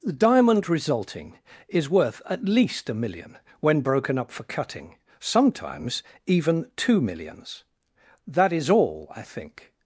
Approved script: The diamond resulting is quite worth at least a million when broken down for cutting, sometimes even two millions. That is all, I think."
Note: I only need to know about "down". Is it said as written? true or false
false